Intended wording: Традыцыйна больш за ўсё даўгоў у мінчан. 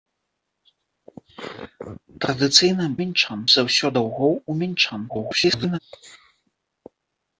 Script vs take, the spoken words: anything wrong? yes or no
yes